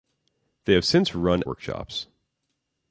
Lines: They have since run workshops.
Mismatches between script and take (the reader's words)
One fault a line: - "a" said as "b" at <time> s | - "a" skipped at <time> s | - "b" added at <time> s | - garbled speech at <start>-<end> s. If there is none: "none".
none